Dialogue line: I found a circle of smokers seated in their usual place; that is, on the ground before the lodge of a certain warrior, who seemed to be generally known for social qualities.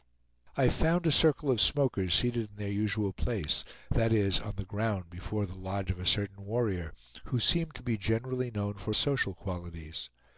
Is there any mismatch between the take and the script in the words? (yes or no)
no